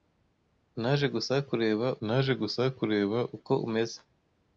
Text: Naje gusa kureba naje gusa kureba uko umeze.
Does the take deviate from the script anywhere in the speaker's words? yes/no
no